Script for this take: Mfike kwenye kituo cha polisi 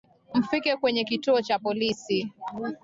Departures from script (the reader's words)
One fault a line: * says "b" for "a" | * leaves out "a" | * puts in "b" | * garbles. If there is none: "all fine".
all fine